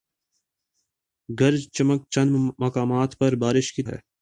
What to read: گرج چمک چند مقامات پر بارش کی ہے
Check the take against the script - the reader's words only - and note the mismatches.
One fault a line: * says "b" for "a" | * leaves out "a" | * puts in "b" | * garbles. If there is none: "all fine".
all fine